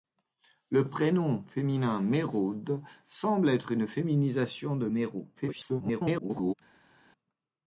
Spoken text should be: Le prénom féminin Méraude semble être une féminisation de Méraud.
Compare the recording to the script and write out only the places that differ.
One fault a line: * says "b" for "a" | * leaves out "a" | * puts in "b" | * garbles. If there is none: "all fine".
* garbles